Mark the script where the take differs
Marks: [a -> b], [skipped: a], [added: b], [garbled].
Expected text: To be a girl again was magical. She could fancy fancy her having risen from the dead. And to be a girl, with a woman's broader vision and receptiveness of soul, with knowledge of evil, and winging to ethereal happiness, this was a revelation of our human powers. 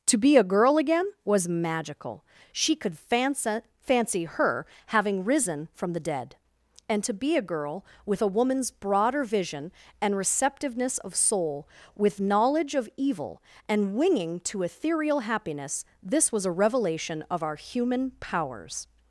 To be a girl again was magical. She could fancy fancy her having risen from the dead. And to be a girl, with a woman's broader vision and receptiveness of soul, with knowledge of evil, and winging to ethereal happiness, this was a revelation of our human powers.